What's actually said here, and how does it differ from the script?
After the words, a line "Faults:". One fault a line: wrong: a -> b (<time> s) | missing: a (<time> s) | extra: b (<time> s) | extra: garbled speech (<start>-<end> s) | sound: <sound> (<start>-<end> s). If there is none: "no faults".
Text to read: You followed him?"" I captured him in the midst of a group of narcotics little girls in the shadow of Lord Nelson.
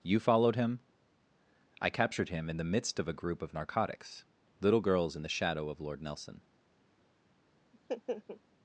You followed him?"" I captured him in the midst of a group of narcotics little girls in the shadow of Lord Nelson.
Faults:
sound: laugh (7.7-8.4 s)